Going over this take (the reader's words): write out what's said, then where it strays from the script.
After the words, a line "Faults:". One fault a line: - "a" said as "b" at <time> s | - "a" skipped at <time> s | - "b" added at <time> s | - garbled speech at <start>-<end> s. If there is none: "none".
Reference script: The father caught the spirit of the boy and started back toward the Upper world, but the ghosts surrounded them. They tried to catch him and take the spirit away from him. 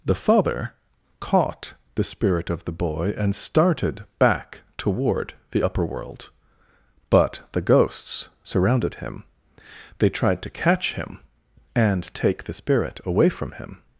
The father caught the spirit of the boy and started back toward the Upper world, but the ghosts surrounded him. They tried to catch him and take the spirit away from him.
Faults:
- "them" said as "him" at 9.0 s